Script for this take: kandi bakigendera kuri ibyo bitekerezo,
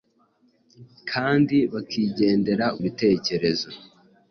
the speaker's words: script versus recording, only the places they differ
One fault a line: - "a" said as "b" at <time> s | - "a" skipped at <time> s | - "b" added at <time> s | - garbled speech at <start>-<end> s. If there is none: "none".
- "kuri ibyo" skipped at 2.6 s